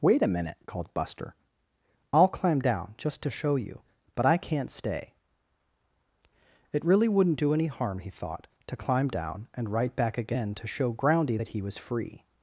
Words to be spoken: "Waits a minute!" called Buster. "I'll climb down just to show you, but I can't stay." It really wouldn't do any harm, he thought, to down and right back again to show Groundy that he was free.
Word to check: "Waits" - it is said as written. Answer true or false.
false